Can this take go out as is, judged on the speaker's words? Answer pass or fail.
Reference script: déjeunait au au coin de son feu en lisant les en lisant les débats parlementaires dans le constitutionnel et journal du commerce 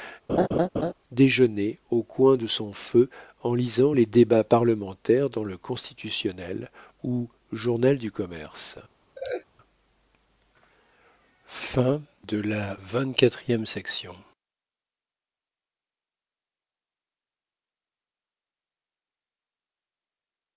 fail